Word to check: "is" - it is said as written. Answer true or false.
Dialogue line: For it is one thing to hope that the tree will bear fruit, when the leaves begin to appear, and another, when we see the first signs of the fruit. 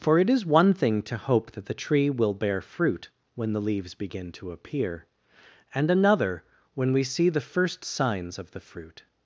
true